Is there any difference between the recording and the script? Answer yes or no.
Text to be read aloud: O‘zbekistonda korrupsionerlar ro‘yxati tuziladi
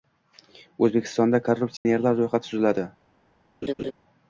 no